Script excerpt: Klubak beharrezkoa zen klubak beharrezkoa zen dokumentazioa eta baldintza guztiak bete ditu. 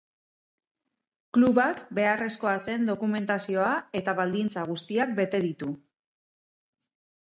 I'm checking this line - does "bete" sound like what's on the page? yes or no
yes